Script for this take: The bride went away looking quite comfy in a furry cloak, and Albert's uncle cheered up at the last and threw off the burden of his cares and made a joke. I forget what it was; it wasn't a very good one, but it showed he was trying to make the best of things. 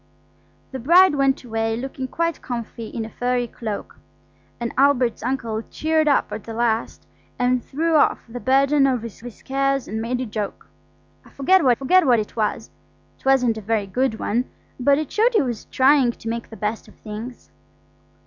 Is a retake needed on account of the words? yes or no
yes